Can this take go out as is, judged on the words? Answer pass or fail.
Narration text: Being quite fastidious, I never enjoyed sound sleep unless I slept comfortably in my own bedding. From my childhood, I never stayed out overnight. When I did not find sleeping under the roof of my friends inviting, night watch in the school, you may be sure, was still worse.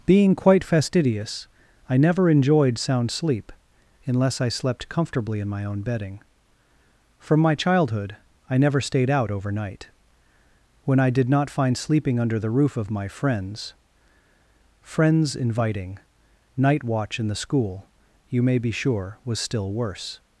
fail